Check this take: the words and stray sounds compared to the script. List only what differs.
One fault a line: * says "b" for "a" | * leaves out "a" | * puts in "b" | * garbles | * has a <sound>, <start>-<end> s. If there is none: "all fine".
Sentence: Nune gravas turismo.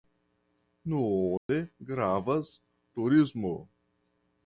* has a dropout, 1.4-1.5 s